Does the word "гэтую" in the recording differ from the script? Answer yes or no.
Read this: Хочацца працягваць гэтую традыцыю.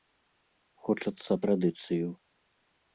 yes